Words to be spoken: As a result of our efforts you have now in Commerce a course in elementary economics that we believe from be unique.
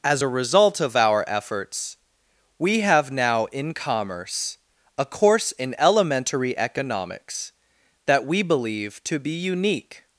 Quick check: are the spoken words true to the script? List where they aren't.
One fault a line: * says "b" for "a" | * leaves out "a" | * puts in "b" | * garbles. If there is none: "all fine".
* says "we" for "you"
* says "to" for "from"